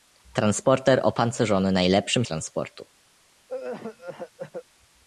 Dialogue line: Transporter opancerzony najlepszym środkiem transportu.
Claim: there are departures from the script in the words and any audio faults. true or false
true